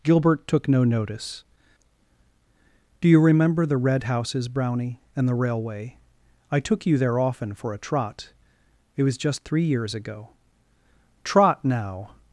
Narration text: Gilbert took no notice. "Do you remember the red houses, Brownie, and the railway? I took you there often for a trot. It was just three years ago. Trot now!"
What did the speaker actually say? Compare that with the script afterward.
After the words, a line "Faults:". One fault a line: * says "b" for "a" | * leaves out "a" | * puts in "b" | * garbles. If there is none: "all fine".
Gilbert took no notice. "Do you remember the red houses, Brownie, and the railway? I took you there often for a trot. It was just three years ago. Trot now!"
Faults:
all fine